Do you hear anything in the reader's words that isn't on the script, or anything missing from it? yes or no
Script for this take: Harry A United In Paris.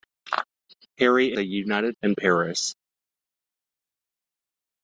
no